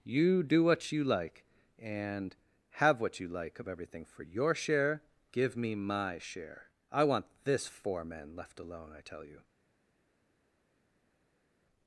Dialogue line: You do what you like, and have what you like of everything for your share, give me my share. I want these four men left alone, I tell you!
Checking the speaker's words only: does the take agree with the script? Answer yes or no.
no